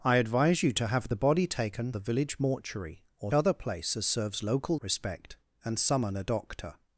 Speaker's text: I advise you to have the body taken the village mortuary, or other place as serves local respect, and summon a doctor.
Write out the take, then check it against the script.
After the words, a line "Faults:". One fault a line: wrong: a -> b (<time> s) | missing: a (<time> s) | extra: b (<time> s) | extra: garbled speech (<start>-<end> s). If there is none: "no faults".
I advise you to have the body taken the village mortuary, or other place as serves local respect, and summon a doctor.
Faults:
no faults